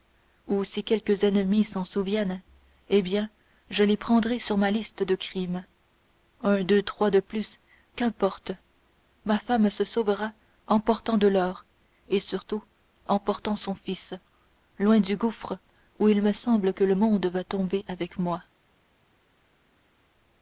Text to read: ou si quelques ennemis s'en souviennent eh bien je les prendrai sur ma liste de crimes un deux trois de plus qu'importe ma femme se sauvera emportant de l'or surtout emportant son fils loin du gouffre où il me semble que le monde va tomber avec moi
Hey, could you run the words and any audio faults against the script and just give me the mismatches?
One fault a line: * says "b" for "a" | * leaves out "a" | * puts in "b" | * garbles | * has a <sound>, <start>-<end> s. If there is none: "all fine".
* puts in "et"